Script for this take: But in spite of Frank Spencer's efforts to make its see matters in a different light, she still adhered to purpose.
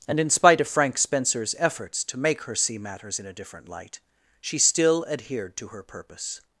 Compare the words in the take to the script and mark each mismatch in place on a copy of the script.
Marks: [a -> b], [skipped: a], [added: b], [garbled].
[But -> And] in spite of Frank Spencer's efforts to make [its -> her] see matters in a different light, she still adhered to [added: her] purpose.